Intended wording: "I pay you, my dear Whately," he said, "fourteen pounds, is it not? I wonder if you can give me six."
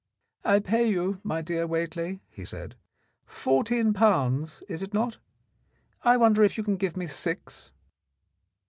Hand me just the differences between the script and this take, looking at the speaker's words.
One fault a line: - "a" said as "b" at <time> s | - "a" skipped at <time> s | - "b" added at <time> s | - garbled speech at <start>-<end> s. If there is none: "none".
none